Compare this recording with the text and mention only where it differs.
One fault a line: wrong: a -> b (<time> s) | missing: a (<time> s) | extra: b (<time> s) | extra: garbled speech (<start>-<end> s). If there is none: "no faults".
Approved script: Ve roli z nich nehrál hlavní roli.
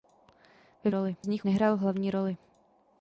no faults